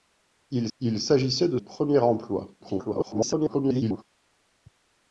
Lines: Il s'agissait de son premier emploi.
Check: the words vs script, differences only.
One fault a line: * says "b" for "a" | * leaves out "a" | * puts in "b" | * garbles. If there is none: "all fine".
* puts in "il"
* leaves out "son"
* garbles